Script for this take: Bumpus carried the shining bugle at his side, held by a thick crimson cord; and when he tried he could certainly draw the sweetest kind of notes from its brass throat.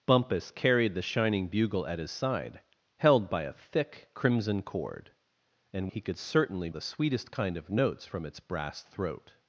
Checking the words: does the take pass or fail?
fail